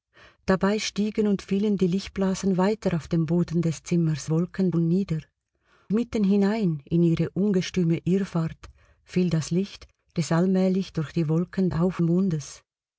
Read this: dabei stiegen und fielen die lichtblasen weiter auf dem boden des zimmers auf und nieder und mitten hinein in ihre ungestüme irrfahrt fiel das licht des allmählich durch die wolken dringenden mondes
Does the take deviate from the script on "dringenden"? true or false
true